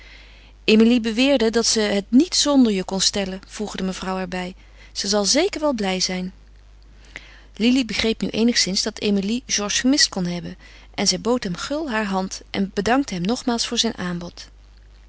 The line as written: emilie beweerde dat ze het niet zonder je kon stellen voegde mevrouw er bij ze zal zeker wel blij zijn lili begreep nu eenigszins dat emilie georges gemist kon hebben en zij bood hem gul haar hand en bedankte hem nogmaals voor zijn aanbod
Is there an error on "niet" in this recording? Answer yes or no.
no